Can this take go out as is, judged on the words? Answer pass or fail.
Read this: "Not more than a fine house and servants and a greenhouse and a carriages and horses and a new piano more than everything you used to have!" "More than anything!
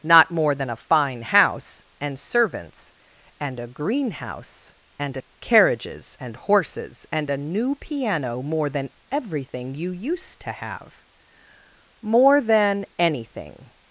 pass